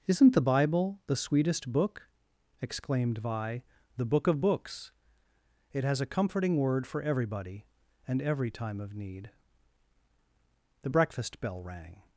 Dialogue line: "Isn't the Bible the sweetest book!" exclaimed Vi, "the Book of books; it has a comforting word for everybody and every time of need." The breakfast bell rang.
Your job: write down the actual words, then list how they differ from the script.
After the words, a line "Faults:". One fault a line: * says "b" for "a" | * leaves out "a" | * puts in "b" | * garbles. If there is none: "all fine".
"Isn't the Bible the sweetest book!" exclaimed Vi, "the Book of books; it has a comforting word for everybody and every time of need." The breakfast bell rang.
Faults:
all fine